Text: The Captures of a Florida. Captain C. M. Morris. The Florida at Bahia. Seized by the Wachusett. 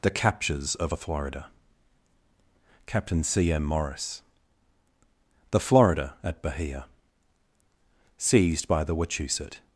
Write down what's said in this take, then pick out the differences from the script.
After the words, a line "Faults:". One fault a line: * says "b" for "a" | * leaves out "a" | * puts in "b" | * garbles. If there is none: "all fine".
The Captures of a Florida. Captain C. M. Morris. The Florida at Bahia. Seized by the Wachusett.
Faults:
all fine